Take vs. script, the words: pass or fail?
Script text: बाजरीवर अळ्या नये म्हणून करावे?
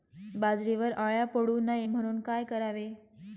fail